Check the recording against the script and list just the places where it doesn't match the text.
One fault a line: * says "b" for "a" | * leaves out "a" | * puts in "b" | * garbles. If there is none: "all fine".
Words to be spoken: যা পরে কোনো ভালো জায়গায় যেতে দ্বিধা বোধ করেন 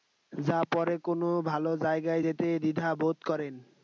all fine